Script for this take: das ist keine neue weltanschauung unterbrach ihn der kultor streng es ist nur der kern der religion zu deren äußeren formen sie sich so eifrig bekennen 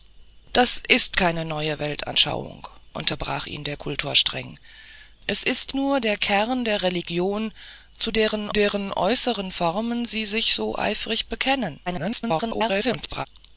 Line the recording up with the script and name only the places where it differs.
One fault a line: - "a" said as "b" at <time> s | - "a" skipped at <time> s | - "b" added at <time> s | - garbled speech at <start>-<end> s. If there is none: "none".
- "deren" added at 8.5 s
- garbled speech at 11.9-13.3 s